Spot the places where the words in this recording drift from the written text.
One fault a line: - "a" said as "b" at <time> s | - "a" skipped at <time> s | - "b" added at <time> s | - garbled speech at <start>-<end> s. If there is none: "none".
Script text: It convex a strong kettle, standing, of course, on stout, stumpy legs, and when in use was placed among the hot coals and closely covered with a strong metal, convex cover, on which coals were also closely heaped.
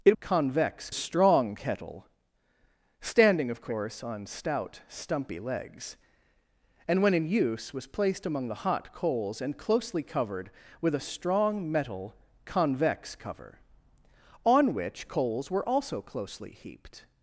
none